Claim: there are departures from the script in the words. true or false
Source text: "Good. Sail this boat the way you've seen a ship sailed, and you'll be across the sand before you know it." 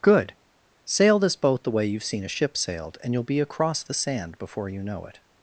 false